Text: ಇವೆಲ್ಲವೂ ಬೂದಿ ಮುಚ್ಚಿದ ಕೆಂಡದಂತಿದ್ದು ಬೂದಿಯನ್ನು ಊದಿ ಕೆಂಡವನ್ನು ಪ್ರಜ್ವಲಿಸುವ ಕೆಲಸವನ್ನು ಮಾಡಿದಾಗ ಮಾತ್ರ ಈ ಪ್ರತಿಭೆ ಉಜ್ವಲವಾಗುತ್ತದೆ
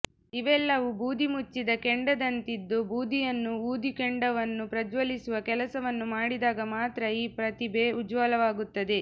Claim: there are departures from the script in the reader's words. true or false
false